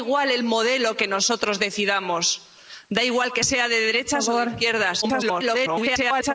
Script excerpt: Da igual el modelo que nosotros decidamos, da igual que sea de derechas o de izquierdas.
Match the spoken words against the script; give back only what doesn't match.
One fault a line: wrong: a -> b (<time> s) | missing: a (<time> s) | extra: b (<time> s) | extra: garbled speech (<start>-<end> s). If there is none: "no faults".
extra: garbled speech (5.0-6.3 s)